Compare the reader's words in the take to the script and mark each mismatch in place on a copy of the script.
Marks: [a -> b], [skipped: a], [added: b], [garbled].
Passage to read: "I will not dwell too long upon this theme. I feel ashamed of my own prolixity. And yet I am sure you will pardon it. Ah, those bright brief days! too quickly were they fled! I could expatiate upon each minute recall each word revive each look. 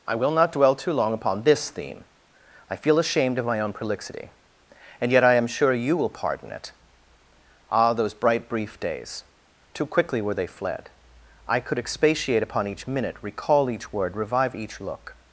"I will not dwell too long upon this theme. I feel ashamed of my own prolixity. And yet I am sure you will pardon it. Ah, those bright brief days! too quickly were they fled! I could expatiate upon each minute recall each word revive each look.